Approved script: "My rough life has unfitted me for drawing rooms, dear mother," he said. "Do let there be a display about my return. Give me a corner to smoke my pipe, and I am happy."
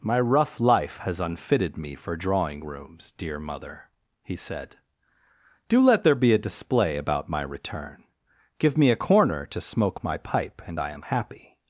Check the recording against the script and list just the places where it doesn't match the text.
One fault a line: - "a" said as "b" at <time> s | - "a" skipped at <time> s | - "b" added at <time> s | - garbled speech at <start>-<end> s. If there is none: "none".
none